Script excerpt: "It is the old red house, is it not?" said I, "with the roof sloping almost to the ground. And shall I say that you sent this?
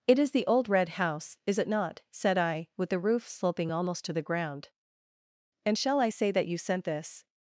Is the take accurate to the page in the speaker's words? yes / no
yes